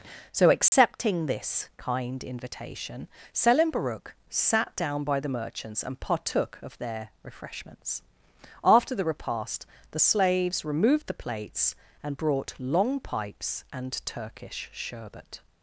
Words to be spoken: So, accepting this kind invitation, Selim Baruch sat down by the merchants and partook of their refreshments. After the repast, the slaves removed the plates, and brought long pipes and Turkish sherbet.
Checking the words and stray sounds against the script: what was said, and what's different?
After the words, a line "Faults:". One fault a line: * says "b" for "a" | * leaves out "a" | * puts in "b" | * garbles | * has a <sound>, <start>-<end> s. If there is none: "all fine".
So, accepting this kind invitation, Selim Baruch sat down by the merchants and partook of their refreshments. After the repast, the slaves removed the plates, and brought long pipes and Turkish sherbet.
Faults:
* has a dropout, 0.7-0.7 s